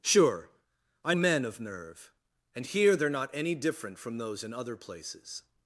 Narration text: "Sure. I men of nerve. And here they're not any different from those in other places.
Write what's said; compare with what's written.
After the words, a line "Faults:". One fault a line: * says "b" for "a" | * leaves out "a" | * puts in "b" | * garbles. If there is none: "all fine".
"Sure. I men of nerve. And here they're not any different from those in other places.
Faults:
all fine